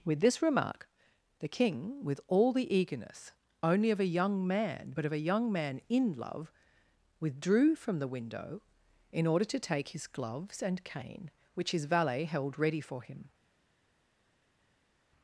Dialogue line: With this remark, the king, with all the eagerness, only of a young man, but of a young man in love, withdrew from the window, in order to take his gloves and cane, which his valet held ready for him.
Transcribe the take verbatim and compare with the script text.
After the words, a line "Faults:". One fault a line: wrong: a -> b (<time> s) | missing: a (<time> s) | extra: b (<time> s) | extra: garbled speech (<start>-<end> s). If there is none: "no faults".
With this remark, the king, with all the eagerness, only of a young man, but of a young man in love, withdrew from the window, in order to take his gloves and cane, which his valet held ready for him.
Faults:
no faults